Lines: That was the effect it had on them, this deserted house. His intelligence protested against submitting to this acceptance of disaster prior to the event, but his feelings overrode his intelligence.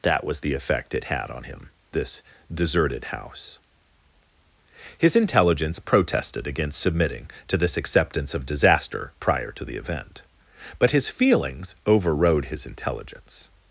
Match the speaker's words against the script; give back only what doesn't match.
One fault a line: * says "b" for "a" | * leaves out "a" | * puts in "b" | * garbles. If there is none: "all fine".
* says "him" for "them"